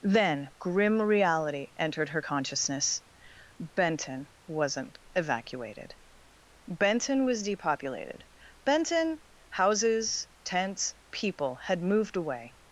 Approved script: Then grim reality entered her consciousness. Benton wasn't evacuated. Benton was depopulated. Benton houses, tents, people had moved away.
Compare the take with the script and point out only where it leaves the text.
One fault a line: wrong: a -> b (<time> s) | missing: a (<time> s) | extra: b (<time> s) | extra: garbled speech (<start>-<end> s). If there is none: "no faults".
no faults